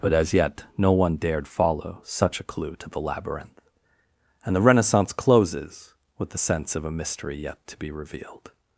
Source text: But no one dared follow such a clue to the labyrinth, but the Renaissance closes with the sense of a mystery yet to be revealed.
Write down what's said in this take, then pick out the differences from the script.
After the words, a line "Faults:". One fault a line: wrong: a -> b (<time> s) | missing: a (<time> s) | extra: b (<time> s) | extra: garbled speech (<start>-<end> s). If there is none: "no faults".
But as yet no one dared follow such a clue to the labyrinth, and the Renaissance closes with the sense of a mystery yet to be revealed.
Faults:
extra: as yet (0.1 s)
wrong: but -> and (4.4 s)